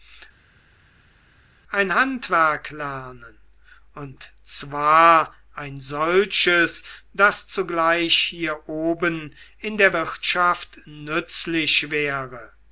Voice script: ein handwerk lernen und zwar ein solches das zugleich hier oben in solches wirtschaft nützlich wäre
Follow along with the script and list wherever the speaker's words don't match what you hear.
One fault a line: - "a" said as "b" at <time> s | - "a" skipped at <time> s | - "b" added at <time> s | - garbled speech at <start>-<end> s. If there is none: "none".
- "solches" said as "der" at 9.8 s